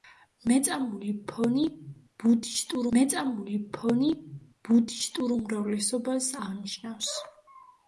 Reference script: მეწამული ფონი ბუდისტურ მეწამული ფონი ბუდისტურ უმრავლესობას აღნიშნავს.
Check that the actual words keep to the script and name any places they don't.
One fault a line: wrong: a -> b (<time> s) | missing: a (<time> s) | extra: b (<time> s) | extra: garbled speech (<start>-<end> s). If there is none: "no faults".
no faults